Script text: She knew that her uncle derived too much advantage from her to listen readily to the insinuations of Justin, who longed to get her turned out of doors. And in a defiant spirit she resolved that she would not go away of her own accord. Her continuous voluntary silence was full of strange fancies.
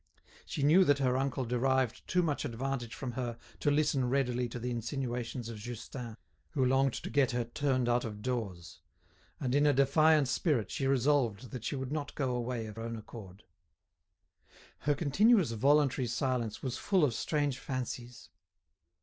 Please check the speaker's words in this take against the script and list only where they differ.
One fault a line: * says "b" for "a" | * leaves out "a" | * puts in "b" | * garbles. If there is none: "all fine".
* leaves out "her"